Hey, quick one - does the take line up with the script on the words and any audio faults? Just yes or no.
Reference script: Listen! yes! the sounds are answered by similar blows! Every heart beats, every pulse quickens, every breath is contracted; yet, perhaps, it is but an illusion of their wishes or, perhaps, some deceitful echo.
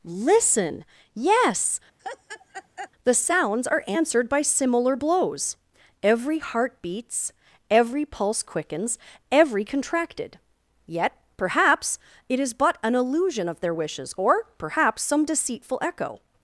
no